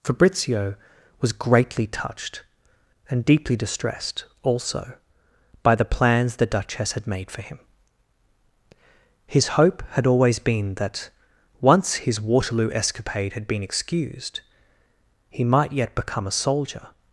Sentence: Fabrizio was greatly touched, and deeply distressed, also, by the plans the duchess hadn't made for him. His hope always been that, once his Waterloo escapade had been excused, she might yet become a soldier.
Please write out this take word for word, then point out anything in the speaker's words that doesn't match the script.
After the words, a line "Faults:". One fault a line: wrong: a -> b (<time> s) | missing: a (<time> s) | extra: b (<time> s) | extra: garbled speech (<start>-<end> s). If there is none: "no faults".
Fabrizio was greatly touched, and deeply distressed, also, by the plans the duchess had made for him. His hope had always been that, once his Waterloo escapade had been excused, he might yet become a soldier.
Faults:
wrong: hadn't -> had (6.9 s)
extra: had (9.9 s)
wrong: she -> he (15.3 s)